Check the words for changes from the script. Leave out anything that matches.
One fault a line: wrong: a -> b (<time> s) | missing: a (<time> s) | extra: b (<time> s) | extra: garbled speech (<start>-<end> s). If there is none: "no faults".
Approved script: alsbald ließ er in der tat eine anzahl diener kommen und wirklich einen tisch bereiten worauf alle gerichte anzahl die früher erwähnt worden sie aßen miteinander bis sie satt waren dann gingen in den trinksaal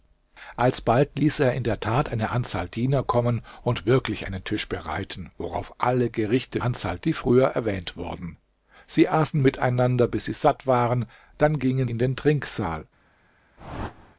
no faults